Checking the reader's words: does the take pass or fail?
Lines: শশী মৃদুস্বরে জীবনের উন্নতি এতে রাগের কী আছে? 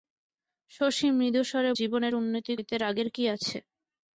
pass